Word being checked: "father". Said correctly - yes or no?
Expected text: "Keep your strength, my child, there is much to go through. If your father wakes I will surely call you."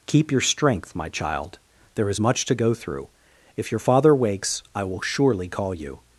yes